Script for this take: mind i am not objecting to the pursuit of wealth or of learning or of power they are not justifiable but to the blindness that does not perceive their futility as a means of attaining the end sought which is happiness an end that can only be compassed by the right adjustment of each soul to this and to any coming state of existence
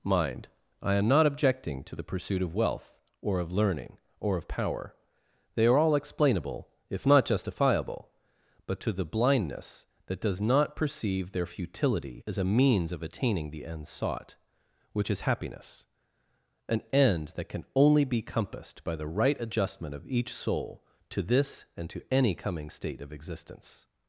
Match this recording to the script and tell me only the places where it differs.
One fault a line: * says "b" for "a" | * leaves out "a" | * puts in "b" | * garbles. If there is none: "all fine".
* puts in "all explainable if"